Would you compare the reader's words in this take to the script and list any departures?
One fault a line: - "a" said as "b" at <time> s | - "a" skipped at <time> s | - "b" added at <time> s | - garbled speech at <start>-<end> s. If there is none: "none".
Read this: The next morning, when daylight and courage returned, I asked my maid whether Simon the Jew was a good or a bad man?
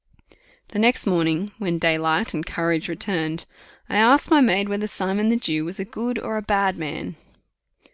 none